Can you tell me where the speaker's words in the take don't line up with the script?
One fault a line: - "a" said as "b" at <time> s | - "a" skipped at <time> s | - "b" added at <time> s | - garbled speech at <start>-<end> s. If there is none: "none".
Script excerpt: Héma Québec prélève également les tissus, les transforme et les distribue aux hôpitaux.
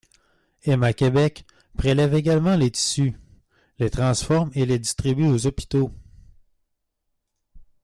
none